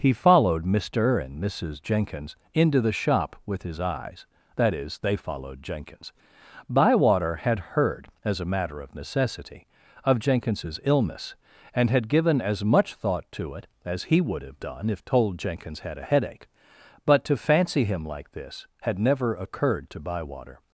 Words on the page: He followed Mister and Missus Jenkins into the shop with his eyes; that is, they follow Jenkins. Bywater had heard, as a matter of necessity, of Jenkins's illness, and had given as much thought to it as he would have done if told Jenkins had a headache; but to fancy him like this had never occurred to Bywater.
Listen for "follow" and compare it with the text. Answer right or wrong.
wrong